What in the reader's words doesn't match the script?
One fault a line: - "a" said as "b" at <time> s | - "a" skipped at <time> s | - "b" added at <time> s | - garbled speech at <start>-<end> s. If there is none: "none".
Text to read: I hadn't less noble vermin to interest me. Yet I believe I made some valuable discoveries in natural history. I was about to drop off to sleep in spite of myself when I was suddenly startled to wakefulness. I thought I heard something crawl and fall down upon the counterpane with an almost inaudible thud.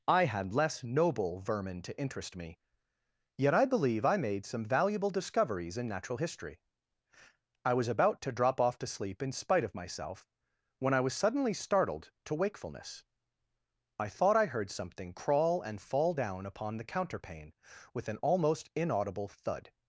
- "hadn't" said as "had" at 0.2 s